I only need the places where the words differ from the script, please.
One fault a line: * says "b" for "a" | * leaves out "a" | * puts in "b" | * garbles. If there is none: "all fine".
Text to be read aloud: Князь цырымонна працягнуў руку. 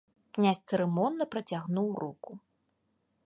all fine